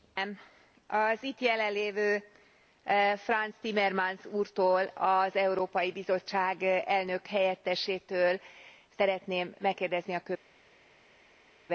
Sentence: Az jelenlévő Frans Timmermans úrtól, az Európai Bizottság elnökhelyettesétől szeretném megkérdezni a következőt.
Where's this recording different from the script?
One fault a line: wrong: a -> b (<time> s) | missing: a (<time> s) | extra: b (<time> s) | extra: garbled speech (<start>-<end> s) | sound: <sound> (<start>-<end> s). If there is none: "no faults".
extra: itt (1.2 s)